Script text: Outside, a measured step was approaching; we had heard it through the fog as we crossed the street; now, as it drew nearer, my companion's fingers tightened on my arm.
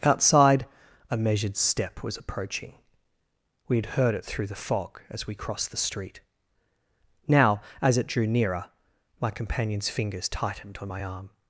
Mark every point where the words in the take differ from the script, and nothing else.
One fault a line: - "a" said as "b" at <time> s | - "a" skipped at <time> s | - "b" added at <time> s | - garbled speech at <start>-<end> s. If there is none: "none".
none